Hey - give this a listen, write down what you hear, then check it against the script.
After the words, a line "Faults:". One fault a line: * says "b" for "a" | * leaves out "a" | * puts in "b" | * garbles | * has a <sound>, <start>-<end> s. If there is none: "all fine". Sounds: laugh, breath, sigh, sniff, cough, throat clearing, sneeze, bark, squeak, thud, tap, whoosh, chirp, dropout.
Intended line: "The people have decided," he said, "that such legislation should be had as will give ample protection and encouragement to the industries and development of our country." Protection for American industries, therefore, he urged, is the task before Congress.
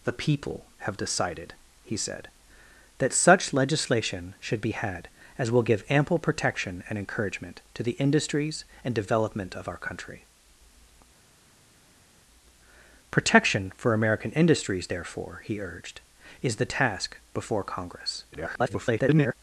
"The people have decided," he said, "that such legislation should be had as will give ample protection and encouragement to the industries and development of our country." Protection for American industries, therefore, he urged, is the task before Congress. [garbled]
Faults:
* garbles